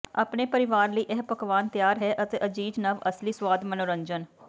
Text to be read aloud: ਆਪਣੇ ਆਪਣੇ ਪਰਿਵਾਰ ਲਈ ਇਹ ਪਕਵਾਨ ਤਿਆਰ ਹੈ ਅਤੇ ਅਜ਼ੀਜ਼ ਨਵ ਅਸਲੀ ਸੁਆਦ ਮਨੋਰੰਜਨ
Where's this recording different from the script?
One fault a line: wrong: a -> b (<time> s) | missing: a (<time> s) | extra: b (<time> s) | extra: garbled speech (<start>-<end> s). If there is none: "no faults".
missing: ਆਪਣੇ (0.5 s)